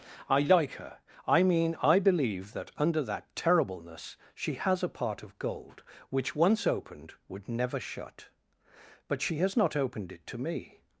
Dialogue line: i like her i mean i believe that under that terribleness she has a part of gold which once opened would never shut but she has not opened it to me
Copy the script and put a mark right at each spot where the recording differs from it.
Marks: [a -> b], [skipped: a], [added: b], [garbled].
i like her i mean i believe that under that terribleness she has a part of gold which once opened would never shut but she has not opened it to me